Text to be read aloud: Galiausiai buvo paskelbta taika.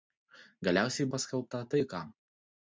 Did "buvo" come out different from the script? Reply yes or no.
yes